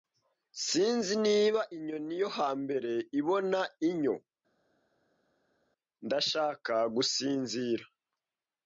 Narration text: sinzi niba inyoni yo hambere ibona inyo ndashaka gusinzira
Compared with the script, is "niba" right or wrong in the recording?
right